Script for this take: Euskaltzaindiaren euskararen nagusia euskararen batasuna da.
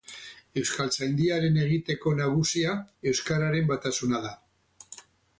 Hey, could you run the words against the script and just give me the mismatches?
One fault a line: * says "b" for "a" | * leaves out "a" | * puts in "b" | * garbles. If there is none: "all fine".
* says "egiteko" for "euskararen"